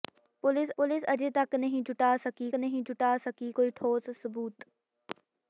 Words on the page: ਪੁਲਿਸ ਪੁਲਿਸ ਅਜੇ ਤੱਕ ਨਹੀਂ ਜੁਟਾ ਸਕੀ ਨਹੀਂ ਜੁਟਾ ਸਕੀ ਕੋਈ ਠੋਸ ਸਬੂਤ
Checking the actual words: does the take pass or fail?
pass